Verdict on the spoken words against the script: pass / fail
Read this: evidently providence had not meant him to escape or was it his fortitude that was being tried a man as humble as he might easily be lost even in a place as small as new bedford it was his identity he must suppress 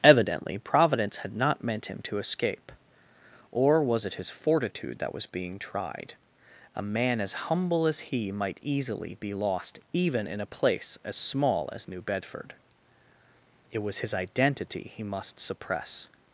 pass